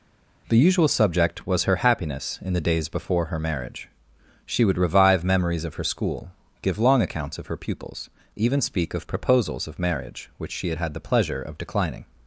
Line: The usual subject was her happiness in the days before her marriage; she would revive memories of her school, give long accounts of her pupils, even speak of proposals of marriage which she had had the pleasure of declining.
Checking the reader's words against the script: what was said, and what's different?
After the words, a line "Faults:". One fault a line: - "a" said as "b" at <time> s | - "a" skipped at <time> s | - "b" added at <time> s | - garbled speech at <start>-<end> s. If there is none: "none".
The usual subject was her happiness in the days before her marriage; she would revive memories of her school, give long accounts of her pupils, even speak of proposals of marriage which she had had the pleasure of declining.
Faults:
none